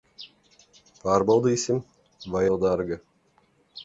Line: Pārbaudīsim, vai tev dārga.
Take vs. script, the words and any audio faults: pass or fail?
pass